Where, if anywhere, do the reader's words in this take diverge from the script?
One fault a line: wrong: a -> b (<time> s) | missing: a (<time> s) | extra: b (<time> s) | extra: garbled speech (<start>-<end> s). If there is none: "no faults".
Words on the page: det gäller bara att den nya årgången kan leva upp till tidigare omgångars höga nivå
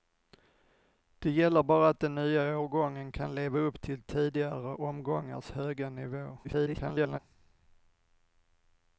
extra: garbled speech (6.4-7.2 s)